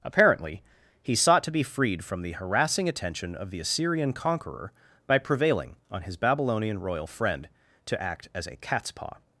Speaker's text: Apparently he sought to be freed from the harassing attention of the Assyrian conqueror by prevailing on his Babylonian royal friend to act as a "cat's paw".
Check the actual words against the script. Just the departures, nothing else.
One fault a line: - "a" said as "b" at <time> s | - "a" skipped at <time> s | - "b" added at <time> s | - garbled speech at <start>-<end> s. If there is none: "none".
none